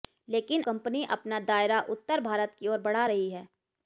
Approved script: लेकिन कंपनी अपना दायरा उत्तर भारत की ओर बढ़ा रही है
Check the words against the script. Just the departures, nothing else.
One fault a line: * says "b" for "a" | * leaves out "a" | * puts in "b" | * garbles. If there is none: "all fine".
all fine